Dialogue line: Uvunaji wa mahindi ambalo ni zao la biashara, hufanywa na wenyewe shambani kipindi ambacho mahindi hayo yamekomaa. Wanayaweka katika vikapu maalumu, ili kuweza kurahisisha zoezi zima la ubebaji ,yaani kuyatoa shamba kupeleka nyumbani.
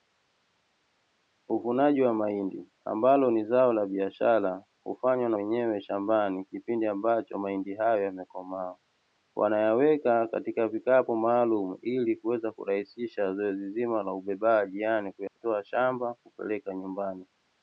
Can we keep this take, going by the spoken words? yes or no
yes